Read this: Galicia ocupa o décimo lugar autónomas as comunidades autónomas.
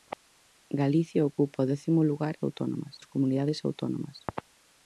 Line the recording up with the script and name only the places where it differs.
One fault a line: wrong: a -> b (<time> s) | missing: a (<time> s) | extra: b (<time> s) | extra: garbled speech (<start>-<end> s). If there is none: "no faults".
no faults